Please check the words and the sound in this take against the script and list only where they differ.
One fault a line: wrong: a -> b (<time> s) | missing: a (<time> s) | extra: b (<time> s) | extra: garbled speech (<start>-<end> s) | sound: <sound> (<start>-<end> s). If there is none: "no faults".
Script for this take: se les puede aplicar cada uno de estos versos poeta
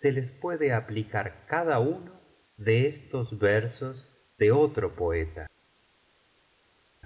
extra: de otro (4.4 s)